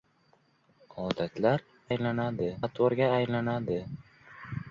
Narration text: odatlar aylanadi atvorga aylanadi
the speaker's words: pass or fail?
pass